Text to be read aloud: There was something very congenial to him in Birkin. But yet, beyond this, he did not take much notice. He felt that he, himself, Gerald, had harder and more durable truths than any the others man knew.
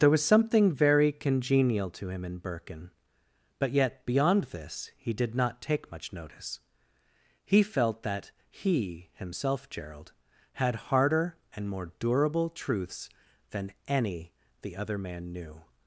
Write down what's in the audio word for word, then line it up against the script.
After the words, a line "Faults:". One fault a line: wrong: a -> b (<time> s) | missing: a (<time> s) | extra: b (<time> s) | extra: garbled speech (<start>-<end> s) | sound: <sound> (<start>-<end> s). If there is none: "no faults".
There was something very congenial to him in Birkin. But yet, beyond this, he did not take much notice. He felt that he, himself, Gerald, had harder and more durable truths than any the other man knew.
Faults:
wrong: others -> other (14.8 s)